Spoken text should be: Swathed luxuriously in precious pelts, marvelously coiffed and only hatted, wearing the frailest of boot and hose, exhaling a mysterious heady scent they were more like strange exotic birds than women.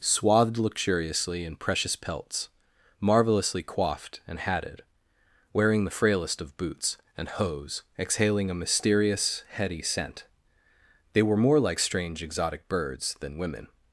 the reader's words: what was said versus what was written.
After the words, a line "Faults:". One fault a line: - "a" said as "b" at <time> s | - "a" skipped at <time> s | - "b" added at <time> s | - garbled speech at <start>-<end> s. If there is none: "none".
Swathed luxuriously in precious pelts, marvelously coiffed and hatted, wearing the frailest of boots and hose, exhaling a mysterious heady scent they were more like strange exotic birds than women.
Faults:
- "only" skipped at 4.4 s
- "boot" said as "boots" at 6.6 s